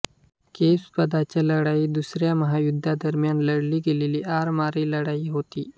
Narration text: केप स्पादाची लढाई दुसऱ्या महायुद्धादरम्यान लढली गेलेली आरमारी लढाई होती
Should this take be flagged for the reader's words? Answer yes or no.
no